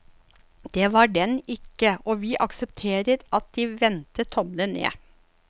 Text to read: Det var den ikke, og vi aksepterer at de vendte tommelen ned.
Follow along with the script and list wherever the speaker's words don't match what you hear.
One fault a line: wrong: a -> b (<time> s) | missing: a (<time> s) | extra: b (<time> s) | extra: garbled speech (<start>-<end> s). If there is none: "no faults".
no faults